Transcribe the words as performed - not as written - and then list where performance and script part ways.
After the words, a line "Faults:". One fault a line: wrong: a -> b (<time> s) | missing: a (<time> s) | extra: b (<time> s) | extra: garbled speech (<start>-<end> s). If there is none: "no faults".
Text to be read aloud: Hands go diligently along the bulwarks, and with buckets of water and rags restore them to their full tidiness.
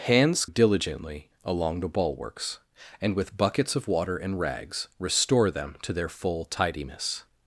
Hands diligently along the bulwarks, and with buckets of water and rags restore them to their full tidiness.
Faults:
missing: go (0.5 s)